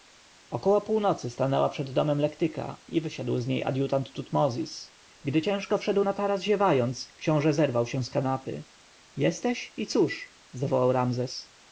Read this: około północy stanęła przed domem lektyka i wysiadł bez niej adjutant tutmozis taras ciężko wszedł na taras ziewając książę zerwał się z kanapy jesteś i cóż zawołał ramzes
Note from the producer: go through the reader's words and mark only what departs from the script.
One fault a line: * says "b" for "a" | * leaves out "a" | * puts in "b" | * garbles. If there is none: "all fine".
* says "z" for "bez"
* says "gdy" for "taras"